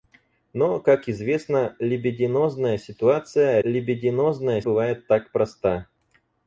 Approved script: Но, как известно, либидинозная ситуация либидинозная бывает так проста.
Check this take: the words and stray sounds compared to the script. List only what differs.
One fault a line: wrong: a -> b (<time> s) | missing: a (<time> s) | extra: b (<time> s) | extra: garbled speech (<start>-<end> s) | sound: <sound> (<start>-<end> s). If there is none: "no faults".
no faults